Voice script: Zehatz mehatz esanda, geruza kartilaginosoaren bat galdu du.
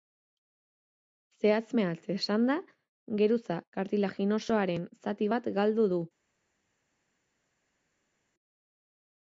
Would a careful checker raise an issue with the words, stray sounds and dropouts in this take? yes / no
yes